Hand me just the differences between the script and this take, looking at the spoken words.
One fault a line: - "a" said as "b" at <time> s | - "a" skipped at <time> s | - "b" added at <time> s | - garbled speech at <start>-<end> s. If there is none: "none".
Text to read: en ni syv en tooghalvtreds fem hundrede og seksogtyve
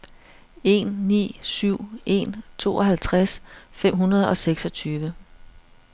none